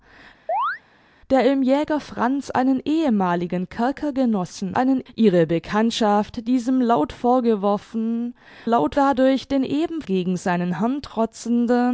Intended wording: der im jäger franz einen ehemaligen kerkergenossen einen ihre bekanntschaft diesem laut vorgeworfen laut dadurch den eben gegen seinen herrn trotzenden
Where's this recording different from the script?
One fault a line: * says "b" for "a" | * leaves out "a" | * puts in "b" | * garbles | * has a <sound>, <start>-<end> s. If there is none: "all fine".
* has a chirp, 0.5-0.8 s